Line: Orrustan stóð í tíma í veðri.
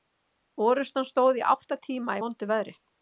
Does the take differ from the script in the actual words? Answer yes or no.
yes